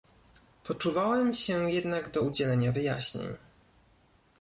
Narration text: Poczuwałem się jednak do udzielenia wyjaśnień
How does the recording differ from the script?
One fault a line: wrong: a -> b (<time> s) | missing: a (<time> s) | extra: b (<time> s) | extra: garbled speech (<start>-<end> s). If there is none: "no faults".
no faults